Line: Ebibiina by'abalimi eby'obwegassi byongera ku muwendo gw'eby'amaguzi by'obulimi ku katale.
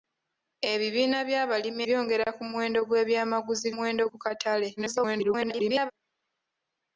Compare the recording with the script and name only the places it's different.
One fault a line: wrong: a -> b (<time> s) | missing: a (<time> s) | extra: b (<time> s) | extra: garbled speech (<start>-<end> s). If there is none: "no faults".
missing: eby'obwegassi (1.8 s)
wrong: by'obulimi -> muwendo (3.7 s)
extra: garbled speech (4.8-5.9 s)